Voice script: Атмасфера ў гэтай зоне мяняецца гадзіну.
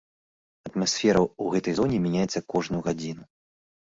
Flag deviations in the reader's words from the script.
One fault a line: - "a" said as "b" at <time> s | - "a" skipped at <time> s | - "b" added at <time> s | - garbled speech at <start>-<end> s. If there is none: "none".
- "кожную" added at 2.5 s